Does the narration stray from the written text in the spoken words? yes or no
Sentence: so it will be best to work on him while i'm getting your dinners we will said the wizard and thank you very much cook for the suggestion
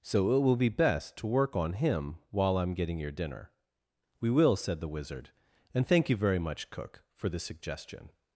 yes